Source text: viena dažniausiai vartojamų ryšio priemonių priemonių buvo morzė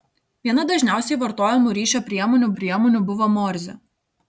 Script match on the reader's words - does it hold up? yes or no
yes